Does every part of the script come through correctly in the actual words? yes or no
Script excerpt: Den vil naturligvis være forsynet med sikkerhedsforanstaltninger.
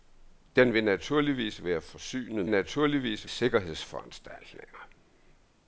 no